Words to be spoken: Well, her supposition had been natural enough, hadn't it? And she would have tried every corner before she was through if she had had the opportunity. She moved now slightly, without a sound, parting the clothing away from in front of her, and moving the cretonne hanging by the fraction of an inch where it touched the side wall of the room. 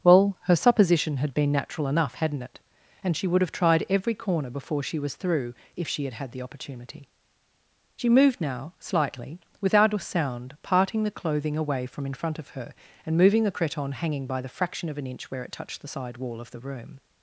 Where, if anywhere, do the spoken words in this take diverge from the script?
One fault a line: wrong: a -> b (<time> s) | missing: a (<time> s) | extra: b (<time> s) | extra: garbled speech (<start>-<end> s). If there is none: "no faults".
no faults